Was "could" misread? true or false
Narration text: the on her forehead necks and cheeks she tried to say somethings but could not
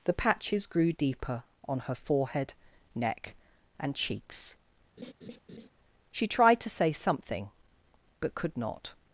false